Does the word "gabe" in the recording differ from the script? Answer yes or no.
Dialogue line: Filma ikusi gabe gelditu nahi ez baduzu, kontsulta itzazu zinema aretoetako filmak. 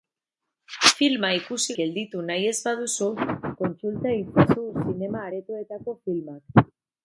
yes